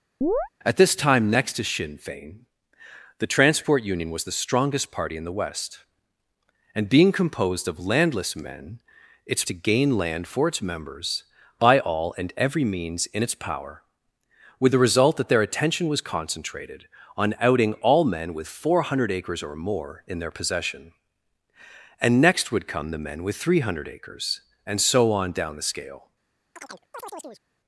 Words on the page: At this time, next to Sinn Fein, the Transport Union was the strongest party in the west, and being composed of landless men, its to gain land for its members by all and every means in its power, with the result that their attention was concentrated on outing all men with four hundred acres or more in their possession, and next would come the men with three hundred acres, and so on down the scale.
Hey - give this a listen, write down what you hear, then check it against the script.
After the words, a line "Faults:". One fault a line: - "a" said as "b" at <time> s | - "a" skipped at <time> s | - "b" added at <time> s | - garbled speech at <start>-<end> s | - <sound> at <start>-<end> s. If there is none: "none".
At this time, next to Sinn Fein, the Transport Union was the strongest party in the west, and being composed of landless men, its to gain land for its members by all and every means in its power, with the result that their attention was concentrated on outing all men with four hundred acres or more in their possession, and next would come the men with three hundred acres, and so on down the scale.
Faults:
- chirp at 0.2-0.5 s
- chirp at 26.6-27.4 s